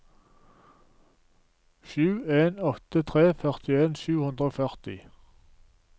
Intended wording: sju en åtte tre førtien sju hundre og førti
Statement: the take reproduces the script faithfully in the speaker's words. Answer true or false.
true